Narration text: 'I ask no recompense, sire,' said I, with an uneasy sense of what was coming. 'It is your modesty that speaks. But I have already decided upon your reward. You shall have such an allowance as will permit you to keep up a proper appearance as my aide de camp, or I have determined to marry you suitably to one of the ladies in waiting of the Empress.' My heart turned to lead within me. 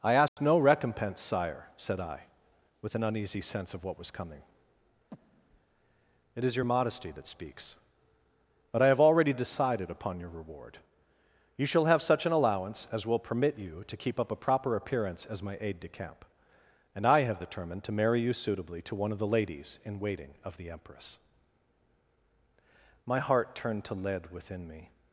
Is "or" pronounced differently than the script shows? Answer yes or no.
yes